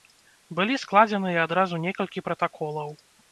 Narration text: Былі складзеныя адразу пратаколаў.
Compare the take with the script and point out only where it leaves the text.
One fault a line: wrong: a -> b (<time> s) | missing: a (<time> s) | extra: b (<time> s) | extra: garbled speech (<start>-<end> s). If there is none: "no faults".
extra: некалькі (1.9 s)